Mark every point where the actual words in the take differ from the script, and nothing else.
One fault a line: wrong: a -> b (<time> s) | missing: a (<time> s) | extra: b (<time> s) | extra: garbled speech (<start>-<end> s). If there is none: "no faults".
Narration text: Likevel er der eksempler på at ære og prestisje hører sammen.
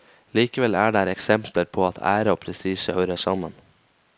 no faults